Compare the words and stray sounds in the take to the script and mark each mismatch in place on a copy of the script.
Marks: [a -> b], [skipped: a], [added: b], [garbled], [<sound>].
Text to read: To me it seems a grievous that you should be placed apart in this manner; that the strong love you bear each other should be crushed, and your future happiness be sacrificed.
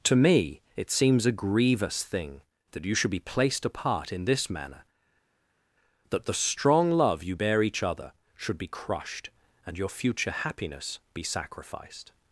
To me it seems a grievous [added: thing] that you should be placed apart in this manner; that the strong love you bear each other should be crushed, and your future happiness be sacrificed.